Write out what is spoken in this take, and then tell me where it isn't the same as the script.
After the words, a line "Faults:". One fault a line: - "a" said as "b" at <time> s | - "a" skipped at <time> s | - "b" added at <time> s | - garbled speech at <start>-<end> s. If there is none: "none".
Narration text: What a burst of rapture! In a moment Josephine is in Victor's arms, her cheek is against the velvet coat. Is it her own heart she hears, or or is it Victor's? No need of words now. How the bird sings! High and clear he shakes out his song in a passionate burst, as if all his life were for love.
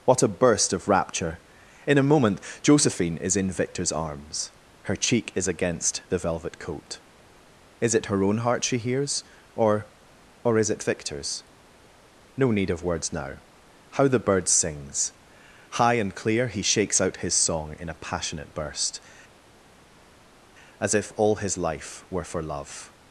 What a burst of rapture! In a moment Josephine is in Victor's arms, her cheek is against the velvet coat. Is it her own heart she hears, or or is it Victor's? No need of words now. How the bird sings! High and clear he shakes out his song in a passionate burst, as if all his life were for love.
Faults:
none